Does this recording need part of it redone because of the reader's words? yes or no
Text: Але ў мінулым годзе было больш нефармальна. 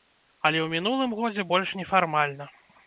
yes